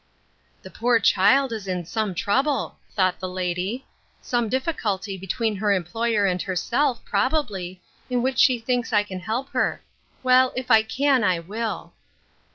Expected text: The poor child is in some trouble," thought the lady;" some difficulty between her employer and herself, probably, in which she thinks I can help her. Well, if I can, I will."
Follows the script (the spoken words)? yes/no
yes